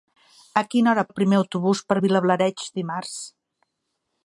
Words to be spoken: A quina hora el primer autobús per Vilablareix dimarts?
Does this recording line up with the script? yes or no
yes